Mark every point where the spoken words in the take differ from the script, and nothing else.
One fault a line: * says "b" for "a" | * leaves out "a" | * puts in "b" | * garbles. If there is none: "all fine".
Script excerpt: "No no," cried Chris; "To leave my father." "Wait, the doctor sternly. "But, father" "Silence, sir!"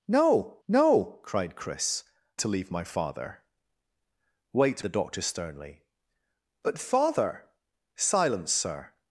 all fine